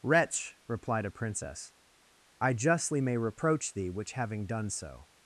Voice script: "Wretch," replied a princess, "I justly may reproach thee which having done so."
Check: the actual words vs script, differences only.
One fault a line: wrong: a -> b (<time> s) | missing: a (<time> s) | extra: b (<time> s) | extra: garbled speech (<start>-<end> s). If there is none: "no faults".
no faults